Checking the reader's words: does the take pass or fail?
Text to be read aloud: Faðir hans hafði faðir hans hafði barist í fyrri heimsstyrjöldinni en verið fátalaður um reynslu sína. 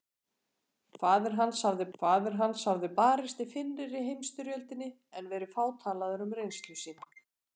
pass